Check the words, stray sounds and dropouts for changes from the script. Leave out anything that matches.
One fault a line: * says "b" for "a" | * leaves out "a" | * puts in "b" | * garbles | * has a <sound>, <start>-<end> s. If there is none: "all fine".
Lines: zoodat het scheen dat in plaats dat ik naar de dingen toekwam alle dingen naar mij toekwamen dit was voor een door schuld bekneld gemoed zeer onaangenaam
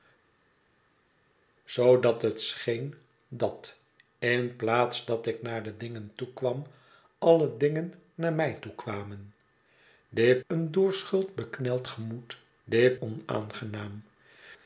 * leaves out "was voor"
* says "dit" for "zeer"